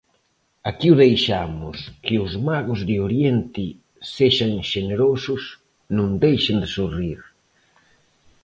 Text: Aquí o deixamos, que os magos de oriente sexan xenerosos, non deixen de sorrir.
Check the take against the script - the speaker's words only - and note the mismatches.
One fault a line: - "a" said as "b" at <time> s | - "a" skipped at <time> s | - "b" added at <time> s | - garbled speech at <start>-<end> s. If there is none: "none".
none